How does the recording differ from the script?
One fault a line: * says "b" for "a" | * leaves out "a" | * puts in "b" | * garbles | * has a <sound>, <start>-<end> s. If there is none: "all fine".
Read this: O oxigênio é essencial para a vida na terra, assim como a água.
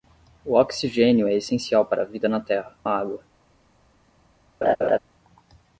* leaves out "assim como"
* has a laugh, 4.6-5.0 s